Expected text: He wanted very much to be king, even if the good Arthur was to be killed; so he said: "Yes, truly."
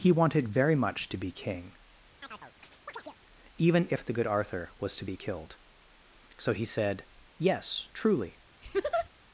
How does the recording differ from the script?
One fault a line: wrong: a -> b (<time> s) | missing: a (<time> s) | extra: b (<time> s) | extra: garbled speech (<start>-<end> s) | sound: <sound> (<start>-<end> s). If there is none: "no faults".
sound: chirp (2.2-3.2 s)
sound: laugh (8.6-9.1 s)